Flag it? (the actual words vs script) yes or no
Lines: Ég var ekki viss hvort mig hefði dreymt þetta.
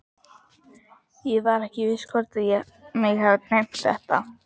no